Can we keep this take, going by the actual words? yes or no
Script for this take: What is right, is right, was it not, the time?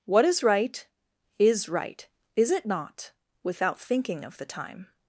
no